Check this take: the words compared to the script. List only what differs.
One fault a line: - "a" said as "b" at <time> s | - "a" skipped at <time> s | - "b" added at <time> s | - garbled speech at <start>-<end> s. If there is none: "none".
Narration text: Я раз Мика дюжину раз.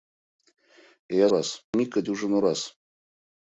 none